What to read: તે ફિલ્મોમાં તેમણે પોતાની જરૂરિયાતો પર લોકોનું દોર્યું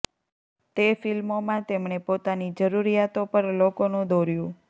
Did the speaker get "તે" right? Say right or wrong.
right